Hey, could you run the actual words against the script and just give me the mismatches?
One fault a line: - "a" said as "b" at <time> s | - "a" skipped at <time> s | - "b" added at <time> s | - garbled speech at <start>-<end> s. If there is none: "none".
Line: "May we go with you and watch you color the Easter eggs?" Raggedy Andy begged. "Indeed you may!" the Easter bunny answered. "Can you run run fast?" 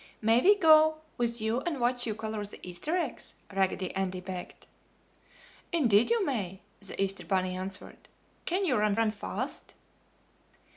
none